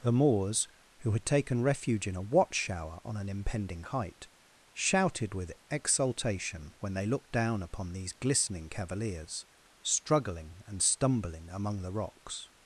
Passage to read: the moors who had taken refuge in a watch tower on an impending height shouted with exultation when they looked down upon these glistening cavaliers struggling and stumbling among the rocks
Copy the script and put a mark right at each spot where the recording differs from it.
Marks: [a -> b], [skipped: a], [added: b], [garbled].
the moors who had taken refuge in a watch [tower -> shower] on an impending height shouted with exultation when they looked down upon these glistening cavaliers struggling and stumbling among the rocks